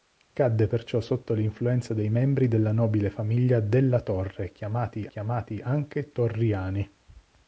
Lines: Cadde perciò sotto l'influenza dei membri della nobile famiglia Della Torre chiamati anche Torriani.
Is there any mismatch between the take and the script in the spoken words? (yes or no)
yes